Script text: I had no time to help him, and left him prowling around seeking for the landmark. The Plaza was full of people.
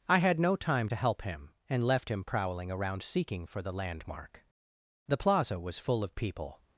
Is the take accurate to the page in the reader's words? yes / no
yes